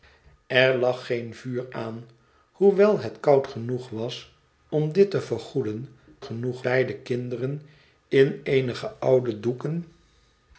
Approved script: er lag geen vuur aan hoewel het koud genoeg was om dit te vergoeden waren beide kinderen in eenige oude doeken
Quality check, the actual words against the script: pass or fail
fail